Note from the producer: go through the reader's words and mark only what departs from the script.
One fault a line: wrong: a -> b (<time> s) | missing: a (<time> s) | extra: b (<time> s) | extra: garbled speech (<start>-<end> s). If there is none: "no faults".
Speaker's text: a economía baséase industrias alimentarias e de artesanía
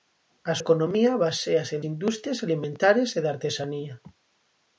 no faults